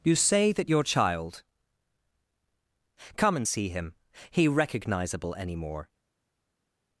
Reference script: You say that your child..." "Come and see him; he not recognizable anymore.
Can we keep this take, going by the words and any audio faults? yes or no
no